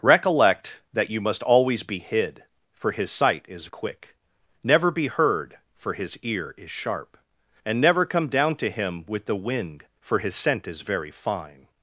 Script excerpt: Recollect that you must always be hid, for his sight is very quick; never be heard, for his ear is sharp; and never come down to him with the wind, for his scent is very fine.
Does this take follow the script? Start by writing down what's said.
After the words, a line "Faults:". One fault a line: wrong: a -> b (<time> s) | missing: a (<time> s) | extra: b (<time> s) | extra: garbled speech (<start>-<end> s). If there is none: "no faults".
Recollect that you must always be hid, for his sight is quick; never be heard, for his ear is sharp; and never come down to him with the wind, for his scent is very fine.
Faults:
missing: very (3.7 s)